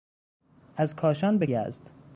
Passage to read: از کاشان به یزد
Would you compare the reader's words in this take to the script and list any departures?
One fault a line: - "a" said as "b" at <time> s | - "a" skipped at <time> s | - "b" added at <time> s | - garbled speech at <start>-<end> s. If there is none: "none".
none